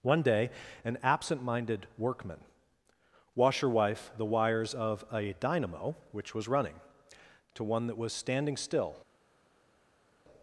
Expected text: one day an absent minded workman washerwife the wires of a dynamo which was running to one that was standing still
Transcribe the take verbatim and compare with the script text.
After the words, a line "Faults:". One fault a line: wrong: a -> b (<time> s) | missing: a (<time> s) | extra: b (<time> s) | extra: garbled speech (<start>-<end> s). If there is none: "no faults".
one day an absent minded workman washerwife the wires of a dynamo which was running to one that was standing still
Faults:
no faults